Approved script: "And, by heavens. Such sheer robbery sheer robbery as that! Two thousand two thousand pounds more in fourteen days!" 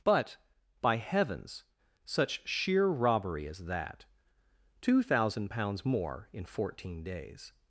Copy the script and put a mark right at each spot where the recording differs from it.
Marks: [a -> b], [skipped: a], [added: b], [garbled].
["And, -> But] by heavens. Such sheer robbery [skipped: sheer robbery] as that! Two thousand [skipped: two thousand] pounds more in fourteen days!"